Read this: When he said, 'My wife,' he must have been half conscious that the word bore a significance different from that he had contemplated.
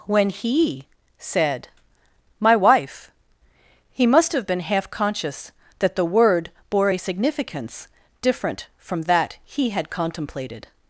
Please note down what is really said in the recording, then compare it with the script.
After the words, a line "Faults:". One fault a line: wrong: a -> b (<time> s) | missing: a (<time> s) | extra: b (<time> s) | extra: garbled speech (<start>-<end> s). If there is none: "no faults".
When he said, 'My wife,' he must have been half conscious that the word bore a significance different from that he had contemplated.
Faults:
no faults